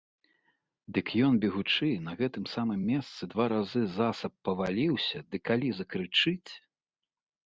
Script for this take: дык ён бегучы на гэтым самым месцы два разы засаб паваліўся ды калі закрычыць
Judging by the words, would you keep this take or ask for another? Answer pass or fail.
pass